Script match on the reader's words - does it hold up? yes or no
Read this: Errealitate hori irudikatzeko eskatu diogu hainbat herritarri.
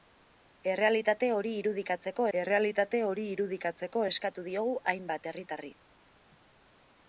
no